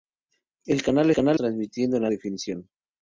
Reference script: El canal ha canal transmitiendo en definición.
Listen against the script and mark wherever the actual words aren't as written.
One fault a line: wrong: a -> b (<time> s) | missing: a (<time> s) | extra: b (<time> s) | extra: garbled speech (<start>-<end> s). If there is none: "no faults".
no faults